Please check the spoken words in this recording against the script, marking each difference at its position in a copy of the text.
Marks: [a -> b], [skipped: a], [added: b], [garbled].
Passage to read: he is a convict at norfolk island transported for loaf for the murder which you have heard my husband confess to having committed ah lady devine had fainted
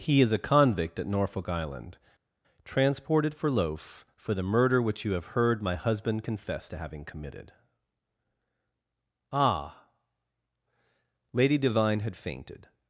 he is a convict at norfolk island transported for loaf for the murder which you have heard my husband confess to having committed ah lady devine had fainted